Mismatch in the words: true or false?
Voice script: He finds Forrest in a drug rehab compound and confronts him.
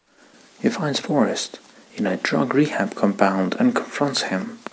false